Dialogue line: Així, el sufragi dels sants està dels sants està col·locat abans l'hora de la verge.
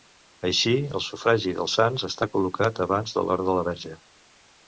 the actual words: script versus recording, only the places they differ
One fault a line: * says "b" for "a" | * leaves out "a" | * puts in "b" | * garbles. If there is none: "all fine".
* leaves out "dels sants està"
* puts in "de"